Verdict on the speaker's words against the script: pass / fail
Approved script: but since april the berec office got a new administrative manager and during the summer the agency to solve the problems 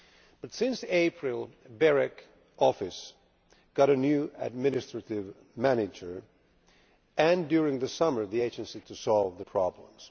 pass